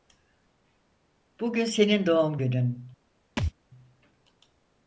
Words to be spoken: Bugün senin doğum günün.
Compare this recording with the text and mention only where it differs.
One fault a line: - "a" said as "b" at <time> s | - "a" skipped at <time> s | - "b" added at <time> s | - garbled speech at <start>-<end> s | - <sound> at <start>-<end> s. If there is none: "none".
- thud at 3.4-3.5 s